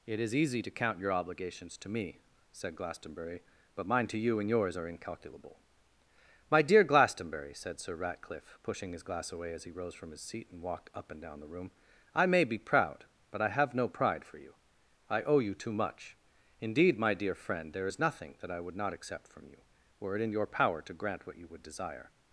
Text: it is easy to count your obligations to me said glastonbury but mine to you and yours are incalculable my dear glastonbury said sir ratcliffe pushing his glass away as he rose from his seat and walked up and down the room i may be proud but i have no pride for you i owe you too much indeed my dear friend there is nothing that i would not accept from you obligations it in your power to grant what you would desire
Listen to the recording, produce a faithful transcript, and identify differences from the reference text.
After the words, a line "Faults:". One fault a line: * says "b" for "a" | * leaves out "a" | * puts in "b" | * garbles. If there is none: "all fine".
it is easy to count your obligations to me said glastonbury but mine to you and yours are incalculable my dear glastonbury said sir ratcliffe pushing his glass away as he rose from his seat and walked up and down the room i may be proud but i have no pride for you i owe you too much indeed my dear friend there is nothing that i would not accept from you were it in your power to grant what you would desire
Faults:
* says "were" for "obligations"